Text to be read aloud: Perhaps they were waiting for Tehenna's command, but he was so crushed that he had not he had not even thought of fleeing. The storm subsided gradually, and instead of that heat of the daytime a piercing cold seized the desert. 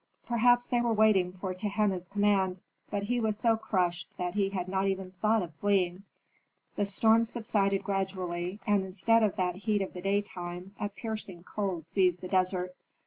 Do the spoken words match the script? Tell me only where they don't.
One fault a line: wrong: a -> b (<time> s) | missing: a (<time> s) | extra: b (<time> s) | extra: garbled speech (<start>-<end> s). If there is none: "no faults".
missing: he had not (4.9 s)